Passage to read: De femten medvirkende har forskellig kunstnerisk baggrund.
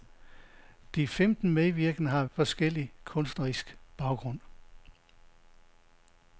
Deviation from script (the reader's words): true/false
false